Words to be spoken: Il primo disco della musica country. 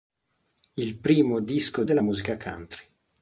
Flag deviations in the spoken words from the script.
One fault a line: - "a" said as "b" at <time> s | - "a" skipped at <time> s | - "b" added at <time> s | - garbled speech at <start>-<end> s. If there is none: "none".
none